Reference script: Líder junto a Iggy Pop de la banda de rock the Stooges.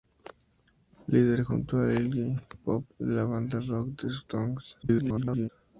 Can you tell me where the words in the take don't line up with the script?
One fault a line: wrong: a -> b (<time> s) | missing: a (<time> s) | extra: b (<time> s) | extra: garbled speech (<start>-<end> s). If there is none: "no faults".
extra: garbled speech (4.8-5.5 s)